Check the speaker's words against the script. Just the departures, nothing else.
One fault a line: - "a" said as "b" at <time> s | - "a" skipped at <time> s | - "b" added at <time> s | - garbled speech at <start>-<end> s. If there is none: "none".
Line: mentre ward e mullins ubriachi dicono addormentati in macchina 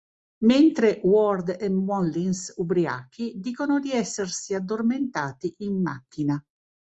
- "di essersi" added at 3.8 s